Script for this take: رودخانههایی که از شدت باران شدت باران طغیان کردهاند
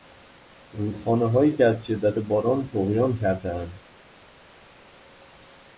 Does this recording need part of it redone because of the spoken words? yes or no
yes